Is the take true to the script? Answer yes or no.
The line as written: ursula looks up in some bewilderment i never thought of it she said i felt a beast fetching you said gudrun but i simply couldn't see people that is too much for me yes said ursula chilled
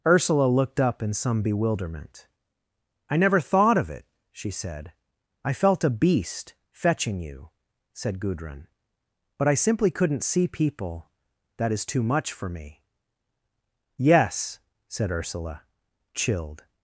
no